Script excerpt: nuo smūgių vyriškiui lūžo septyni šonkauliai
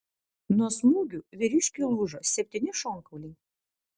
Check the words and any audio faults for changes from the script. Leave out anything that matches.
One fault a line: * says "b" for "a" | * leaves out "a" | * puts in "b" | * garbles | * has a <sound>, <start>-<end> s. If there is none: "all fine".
all fine